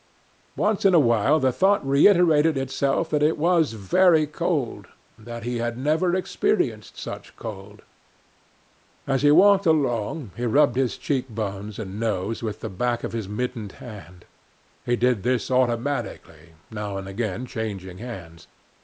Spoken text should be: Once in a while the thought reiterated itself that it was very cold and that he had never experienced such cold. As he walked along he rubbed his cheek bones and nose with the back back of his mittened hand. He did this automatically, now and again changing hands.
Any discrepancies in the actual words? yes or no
yes